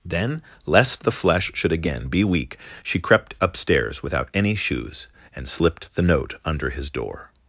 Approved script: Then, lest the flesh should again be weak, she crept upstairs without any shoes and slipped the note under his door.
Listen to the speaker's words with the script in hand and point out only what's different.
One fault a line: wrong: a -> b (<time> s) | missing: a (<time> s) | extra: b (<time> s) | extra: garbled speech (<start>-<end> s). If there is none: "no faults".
no faults